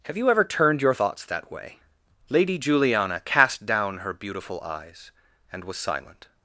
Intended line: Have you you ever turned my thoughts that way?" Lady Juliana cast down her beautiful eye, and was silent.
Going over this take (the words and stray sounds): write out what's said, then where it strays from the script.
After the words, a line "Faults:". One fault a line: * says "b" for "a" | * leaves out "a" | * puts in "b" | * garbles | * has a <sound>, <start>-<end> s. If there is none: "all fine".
Have you ever turned your thoughts that way?" Lady Juliana cast down her beautiful eyes, and was silent.
Faults:
* leaves out "you"
* says "your" for "my"
* says "eyes" for "eye"